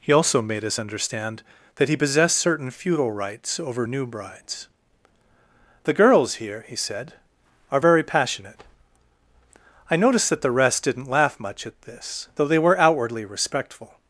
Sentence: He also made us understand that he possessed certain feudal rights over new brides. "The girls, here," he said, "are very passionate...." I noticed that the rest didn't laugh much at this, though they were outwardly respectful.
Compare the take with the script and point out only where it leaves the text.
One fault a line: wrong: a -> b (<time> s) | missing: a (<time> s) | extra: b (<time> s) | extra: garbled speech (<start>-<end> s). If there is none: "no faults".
no faults